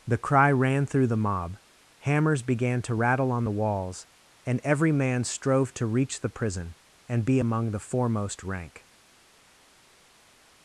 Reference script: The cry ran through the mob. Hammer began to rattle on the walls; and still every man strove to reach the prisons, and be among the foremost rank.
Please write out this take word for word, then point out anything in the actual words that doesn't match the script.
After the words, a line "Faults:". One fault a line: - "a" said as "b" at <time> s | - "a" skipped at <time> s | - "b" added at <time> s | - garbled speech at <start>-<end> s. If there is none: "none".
The cry ran through the mob. Hammers began to rattle on the walls; and every man strove to reach the prison, and be among the foremost rank.
Faults:
- "Hammer" said as "Hammers" at 2.0 s
- "still" skipped at 4.6 s
- "prisons" said as "prison" at 6.3 s